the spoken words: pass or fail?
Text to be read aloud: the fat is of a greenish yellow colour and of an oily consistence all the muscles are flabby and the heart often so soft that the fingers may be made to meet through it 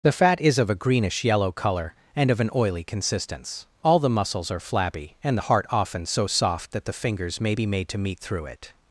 pass